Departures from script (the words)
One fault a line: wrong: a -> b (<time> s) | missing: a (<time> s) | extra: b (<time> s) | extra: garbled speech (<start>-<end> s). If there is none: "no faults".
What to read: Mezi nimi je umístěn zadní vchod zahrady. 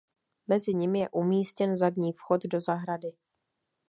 extra: do (2.4 s)